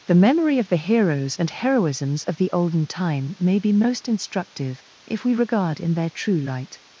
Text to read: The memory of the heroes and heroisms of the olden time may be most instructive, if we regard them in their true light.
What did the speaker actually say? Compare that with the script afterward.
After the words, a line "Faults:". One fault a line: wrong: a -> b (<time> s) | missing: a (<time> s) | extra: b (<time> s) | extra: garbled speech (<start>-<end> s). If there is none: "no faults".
The memory of the heroes and heroisms of the olden time may be most instructive, if we regard in their true light.
Faults:
missing: them (5.8 s)